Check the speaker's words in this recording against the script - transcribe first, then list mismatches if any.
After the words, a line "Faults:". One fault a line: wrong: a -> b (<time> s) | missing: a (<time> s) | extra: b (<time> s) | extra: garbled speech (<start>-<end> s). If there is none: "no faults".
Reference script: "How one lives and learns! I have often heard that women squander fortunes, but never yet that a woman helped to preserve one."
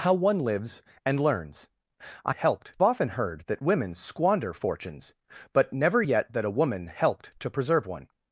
"How one lives and learns! I helped often heard that women squander fortunes, but never yet that a woman helped to preserve one."
Faults:
wrong: have -> helped (2.3 s)